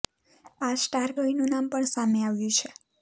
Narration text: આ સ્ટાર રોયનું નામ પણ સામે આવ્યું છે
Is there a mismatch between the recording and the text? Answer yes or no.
no